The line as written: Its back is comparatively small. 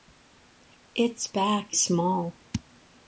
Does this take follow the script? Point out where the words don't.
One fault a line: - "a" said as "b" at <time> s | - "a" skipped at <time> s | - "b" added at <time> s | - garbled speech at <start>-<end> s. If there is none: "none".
- "is comparatively" skipped at 1.8 s